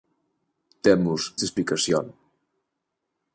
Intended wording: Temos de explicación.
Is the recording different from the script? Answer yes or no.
no